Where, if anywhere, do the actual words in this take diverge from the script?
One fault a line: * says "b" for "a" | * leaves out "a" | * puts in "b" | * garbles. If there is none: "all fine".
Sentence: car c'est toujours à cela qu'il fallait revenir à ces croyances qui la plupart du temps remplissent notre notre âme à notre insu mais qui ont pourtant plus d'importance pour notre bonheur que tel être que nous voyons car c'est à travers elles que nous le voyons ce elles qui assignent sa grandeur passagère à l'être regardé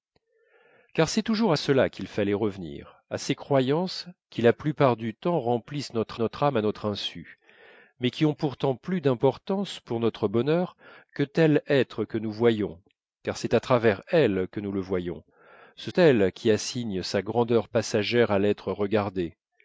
all fine